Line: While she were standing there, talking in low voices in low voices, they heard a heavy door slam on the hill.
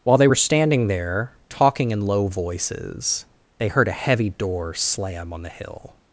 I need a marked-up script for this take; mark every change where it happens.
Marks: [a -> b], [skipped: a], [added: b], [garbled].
While [she -> they] were standing there, talking in low voices [skipped: in low voices,] they heard a heavy door slam on the hill.